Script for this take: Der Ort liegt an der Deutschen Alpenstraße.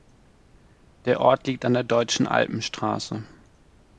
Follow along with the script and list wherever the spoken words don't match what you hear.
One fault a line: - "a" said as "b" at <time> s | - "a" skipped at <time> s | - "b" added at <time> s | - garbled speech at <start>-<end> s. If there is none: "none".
none